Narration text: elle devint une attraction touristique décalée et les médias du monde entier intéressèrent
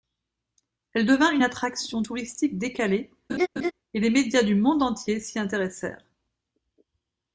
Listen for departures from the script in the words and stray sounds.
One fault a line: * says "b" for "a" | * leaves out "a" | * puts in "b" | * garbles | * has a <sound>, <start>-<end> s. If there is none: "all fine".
* has a laugh, 3.3-3.7 s
* puts in "s'y"